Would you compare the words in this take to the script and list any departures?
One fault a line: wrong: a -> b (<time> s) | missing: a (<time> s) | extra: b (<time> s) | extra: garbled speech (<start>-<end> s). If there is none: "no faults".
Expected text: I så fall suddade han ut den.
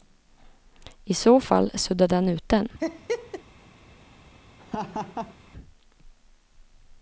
no faults